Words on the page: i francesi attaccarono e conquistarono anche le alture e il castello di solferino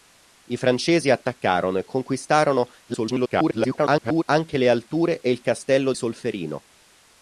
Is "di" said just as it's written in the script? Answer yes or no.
no